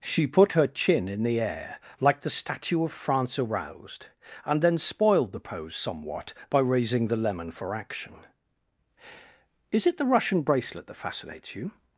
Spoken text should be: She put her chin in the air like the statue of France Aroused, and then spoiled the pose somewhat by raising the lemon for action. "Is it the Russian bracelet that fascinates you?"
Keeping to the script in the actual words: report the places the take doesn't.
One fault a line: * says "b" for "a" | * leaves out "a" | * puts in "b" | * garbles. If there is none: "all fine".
all fine